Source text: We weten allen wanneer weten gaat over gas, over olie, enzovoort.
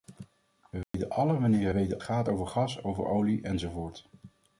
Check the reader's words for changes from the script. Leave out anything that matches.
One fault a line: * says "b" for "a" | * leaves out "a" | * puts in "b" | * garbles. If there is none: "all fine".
all fine